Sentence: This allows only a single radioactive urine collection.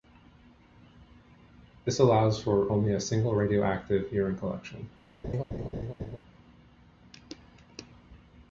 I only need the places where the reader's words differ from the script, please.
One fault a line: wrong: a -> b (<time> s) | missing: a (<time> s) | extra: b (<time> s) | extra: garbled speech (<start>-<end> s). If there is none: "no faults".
extra: for (2.4 s)